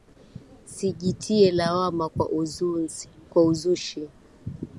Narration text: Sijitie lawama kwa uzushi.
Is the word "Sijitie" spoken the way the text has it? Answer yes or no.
yes